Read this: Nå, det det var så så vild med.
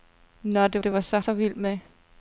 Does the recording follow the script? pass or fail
pass